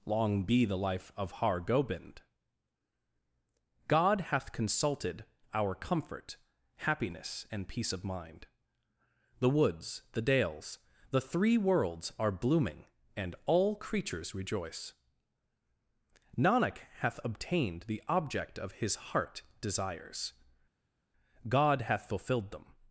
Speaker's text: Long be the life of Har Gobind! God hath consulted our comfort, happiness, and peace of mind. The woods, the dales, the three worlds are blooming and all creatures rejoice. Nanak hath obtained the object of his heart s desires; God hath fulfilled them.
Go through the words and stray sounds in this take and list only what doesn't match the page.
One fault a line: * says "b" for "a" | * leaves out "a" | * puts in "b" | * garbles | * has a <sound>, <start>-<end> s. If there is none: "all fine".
* leaves out "s"